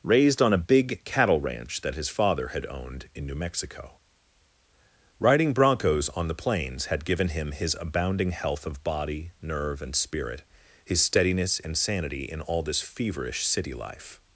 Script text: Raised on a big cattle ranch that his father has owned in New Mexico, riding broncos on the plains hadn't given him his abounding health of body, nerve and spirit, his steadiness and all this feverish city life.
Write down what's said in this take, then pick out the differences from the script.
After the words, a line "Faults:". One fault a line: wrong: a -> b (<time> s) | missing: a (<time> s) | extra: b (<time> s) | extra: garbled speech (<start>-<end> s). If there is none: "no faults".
Raised on a big cattle ranch that his father had owned in New Mexico, riding broncos on the plains had given him his abounding health of body, nerve and spirit, his steadiness and sanity in all this feverish city life.
Faults:
wrong: has -> had (2.5 s)
wrong: hadn't -> had (6.8 s)
extra: sanity in (11.8 s)